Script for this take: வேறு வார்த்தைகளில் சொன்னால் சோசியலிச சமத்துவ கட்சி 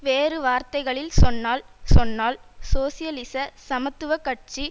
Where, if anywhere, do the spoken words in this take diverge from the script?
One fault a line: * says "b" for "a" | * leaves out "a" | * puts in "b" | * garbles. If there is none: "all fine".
* puts in "சொன்னால்"